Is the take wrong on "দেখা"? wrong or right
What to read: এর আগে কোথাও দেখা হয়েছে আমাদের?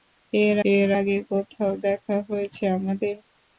right